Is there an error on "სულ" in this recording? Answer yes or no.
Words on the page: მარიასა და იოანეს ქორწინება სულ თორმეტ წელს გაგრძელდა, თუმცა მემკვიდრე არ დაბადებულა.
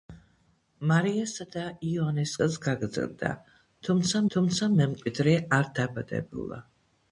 yes